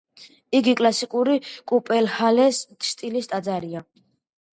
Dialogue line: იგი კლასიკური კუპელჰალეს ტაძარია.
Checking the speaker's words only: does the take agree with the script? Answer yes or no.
no